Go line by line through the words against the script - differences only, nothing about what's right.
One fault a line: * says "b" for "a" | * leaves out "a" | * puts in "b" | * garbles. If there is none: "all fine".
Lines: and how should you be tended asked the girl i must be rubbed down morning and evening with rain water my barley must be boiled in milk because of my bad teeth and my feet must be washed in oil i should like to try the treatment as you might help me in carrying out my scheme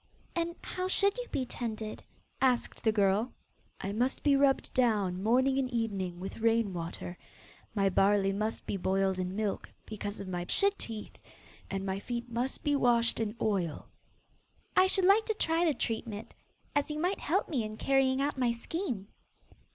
* says "should" for "bad"